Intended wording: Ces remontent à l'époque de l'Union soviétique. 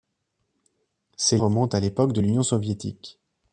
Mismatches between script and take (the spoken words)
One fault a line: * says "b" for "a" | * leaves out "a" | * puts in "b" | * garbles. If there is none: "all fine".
all fine